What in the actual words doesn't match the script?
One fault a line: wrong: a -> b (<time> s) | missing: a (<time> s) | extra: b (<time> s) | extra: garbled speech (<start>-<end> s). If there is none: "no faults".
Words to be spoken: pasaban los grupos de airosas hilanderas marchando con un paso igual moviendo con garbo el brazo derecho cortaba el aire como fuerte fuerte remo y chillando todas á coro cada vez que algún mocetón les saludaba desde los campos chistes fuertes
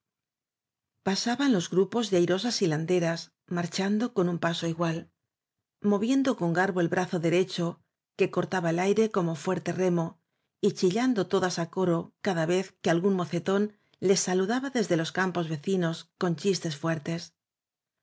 extra: que (8.2 s)
missing: fuerte (9.7 s)
extra: vecinos con (15.5 s)